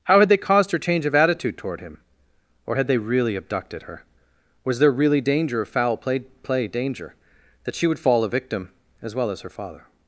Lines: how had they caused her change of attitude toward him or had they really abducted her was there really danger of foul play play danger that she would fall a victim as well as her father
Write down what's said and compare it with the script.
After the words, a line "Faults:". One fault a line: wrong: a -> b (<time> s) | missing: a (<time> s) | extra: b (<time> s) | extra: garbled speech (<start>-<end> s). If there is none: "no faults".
how had they caused her change of attitude toward him or had they really abducted her was there really danger of foul play play danger that she would fall a victim as well as her father
Faults:
no faults